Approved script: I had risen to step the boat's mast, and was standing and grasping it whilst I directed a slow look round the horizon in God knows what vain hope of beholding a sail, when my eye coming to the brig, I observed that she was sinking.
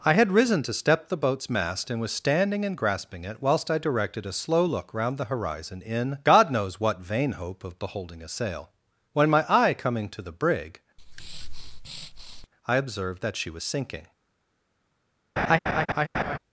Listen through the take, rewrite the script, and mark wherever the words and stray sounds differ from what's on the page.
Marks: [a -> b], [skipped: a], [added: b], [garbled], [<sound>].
I had risen to step the boat's mast, and was standing and grasping it whilst I directed a slow look round the horizon in God knows what vain hope of beholding a sail, when my eye coming to the brig, [breath] I observed that she was sinking. [laugh]